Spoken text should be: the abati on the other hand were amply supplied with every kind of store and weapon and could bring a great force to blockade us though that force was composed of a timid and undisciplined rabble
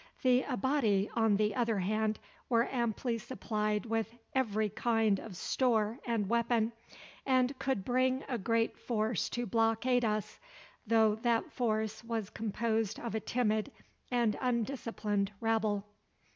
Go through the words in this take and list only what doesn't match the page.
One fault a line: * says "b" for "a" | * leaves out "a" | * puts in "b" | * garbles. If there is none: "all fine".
all fine